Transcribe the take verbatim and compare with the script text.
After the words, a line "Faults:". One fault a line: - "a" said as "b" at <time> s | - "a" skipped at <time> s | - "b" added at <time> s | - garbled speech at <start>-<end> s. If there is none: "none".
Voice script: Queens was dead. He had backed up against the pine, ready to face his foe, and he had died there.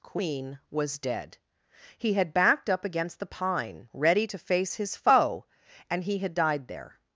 Queen was dead. He had backed up against the pine, ready to face his foe, and he had died there.
Faults:
- "Queens" said as "Queen" at 0.0 s